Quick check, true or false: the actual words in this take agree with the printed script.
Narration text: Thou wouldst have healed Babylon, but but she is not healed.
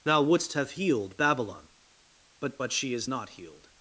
true